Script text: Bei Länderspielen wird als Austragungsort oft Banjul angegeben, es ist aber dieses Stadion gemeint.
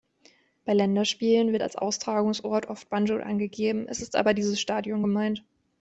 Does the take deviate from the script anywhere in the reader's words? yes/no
no